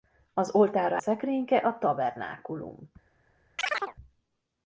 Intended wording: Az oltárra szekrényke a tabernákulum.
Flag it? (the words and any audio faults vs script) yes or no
yes